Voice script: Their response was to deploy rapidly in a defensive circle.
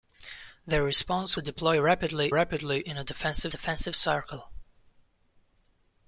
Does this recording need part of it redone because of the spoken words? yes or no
yes